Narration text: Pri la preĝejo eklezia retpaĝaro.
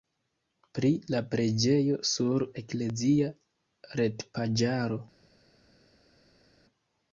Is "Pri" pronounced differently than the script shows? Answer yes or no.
no